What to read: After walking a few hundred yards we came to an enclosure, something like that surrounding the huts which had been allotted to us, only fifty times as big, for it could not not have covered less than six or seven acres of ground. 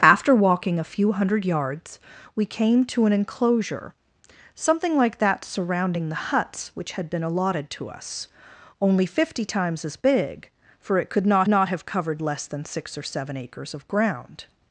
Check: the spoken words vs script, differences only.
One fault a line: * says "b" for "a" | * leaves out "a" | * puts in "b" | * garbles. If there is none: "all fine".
all fine